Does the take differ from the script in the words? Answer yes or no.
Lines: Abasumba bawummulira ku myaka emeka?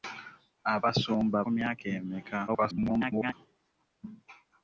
yes